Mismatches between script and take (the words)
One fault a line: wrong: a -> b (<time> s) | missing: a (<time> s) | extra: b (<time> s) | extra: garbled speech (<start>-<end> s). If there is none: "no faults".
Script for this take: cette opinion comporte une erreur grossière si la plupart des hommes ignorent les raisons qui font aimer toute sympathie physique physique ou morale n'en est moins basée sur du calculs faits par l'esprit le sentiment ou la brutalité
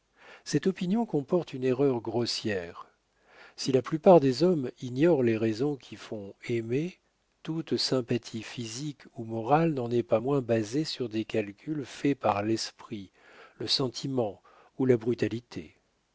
missing: physique (9.0 s)
extra: pas (10.0 s)
wrong: du -> des (11.1 s)